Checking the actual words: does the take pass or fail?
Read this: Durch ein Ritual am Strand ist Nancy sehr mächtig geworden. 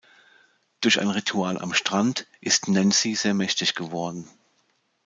pass